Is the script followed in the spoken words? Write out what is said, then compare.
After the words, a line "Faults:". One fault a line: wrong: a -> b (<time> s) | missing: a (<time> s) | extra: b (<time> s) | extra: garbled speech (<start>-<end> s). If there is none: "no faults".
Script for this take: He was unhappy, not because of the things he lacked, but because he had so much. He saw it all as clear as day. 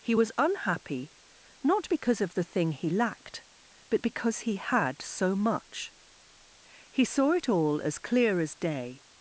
He was unhappy, not because of the thing he lacked, but because he had so much. He saw it all as clear as day.
Faults:
wrong: things -> thing (2.4 s)